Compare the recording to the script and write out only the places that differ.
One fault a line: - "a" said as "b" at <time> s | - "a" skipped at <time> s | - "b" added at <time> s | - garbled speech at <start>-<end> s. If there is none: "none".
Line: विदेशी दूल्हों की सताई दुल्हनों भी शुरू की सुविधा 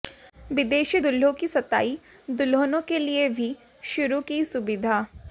- "के लिए" added at 2.8 s